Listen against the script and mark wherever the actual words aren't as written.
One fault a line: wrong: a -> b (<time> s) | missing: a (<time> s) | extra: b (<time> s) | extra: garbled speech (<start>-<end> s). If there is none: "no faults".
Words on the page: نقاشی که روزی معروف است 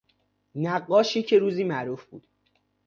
wrong: است -> بود (2.0 s)